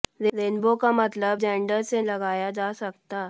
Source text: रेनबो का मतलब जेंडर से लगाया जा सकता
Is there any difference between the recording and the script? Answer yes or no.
no